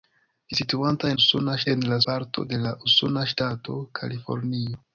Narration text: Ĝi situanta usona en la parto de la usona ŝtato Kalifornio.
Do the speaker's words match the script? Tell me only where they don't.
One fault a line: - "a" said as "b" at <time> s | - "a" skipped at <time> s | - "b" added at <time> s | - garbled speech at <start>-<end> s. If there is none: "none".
none